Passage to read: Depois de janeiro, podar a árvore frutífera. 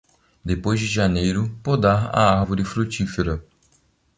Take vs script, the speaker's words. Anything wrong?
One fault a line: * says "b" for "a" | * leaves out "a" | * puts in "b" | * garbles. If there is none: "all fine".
all fine